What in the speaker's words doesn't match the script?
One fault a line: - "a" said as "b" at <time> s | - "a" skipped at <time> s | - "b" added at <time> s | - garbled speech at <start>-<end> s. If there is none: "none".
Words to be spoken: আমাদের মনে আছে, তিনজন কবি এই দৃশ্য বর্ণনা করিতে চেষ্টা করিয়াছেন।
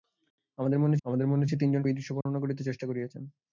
- "আমাদের মনে" added at 1.0 s
- "কবি" skipped at 1.8 s